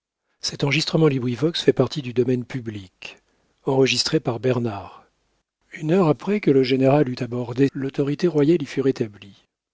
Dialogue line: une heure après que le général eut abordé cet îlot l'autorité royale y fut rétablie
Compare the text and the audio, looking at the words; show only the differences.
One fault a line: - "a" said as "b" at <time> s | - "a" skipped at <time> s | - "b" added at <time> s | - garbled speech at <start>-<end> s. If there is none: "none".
- "cet îlot" skipped at 7.7 s